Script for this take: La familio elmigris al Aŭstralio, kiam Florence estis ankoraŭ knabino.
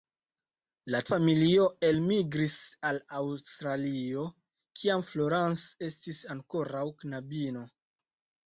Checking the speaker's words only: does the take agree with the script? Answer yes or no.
yes